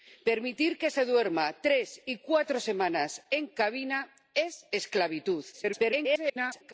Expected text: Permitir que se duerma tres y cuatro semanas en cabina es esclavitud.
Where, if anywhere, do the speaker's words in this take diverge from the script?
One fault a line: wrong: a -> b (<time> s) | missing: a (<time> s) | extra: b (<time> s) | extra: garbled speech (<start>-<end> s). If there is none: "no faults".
extra: garbled speech (5.5-6.7 s)